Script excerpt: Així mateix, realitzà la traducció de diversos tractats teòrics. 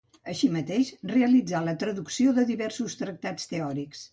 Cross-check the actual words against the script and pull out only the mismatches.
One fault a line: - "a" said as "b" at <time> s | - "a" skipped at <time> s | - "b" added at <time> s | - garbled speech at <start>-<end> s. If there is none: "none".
none